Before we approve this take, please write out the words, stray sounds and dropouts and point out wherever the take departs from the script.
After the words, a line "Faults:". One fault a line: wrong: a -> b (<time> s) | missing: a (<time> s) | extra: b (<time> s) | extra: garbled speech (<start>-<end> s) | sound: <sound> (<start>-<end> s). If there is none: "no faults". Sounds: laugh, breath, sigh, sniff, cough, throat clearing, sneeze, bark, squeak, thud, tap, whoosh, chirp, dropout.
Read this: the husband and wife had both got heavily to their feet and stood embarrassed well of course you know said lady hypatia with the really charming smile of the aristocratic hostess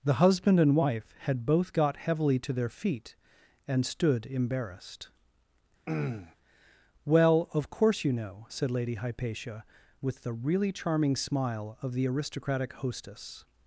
the husband and wife had both got heavily to their feet and stood embarrassed well of course you know said lady hypatia with the really charming smile of the aristocratic hostess
Faults:
sound: throat clearing (5.9-6.4 s)